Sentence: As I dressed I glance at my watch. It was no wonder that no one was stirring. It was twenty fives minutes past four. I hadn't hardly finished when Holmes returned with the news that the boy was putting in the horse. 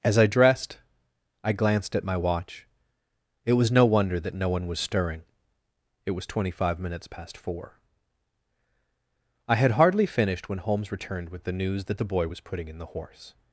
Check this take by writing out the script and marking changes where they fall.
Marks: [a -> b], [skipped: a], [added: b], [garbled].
As I dressed I [glance -> glanced] at my watch. It was no wonder that no one was stirring. It was twenty [fives -> five] minutes past four. I [hadn't -> had] hardly finished when Holmes returned with the news that the boy was putting in the horse.